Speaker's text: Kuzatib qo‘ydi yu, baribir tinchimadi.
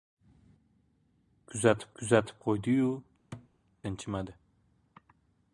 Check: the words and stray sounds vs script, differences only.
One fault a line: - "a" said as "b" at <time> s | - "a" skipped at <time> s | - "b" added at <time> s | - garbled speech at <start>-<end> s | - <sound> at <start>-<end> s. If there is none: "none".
- "kuzatib" added at 2.0 s
- "baribir" skipped at 2.9 s
- thud at 3.3-3.5 s